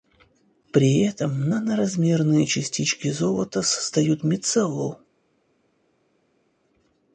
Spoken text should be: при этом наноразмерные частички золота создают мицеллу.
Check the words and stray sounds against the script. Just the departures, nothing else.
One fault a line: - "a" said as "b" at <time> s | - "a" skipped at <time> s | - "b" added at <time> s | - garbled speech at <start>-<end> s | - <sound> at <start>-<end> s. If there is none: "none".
none